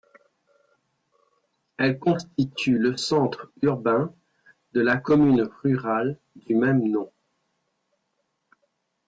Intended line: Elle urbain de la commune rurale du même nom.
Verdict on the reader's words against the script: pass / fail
fail